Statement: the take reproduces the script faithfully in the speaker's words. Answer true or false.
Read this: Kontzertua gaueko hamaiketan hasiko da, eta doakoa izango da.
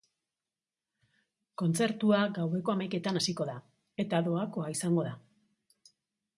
true